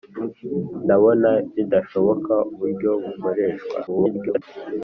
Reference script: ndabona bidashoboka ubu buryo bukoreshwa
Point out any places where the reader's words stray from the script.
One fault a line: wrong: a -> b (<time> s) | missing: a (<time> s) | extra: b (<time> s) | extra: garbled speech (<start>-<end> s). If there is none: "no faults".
missing: ubu (2.3 s)
extra: garbled speech (3.9-4.4 s)